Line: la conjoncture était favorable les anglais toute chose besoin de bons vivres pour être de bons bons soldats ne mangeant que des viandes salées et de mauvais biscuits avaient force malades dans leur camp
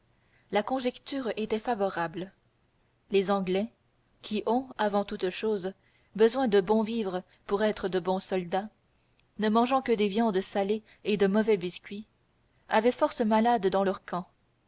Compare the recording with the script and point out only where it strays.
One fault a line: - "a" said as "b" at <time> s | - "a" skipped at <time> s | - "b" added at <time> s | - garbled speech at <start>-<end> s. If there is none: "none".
- "qui ont avant" added at 4.2 s
- "bons" skipped at 8.2 s